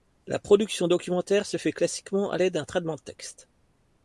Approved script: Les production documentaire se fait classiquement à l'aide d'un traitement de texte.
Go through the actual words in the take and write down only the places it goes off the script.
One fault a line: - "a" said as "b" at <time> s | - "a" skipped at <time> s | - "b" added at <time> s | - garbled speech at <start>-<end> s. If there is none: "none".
- "Les" said as "La" at 0.2 s